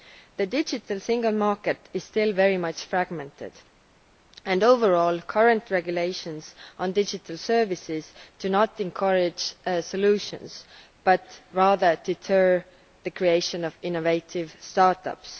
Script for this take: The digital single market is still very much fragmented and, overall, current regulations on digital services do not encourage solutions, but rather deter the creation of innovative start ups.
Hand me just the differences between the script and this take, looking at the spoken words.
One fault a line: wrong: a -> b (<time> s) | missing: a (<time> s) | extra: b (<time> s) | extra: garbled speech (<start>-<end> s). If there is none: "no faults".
no faults